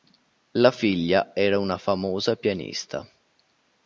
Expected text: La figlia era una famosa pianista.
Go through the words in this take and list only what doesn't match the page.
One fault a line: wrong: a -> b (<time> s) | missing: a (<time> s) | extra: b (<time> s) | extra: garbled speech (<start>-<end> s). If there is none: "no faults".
no faults